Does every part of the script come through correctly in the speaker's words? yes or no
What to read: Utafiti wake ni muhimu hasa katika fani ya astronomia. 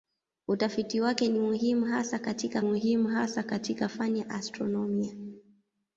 no